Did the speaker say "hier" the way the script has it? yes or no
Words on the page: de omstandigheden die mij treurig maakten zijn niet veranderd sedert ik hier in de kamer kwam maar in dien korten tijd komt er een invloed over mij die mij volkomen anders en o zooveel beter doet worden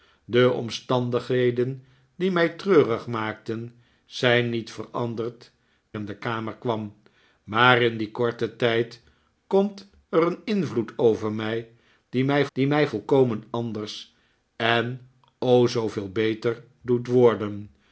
no